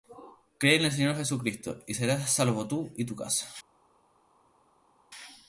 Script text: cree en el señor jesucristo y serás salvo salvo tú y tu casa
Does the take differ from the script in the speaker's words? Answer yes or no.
yes